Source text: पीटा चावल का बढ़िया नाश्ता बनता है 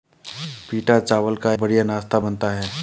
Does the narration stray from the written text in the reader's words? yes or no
no